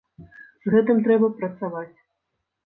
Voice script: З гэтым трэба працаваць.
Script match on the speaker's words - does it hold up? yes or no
yes